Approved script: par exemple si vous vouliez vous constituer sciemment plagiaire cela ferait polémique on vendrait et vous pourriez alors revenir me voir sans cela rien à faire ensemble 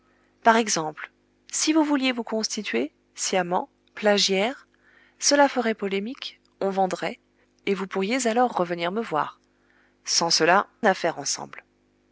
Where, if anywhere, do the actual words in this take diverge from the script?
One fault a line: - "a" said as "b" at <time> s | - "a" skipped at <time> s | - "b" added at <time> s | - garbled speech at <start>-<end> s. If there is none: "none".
- "rien" skipped at 10.7 s